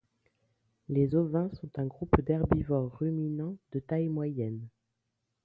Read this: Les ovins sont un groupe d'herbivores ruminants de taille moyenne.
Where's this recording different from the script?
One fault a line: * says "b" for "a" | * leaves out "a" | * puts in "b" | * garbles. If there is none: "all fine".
all fine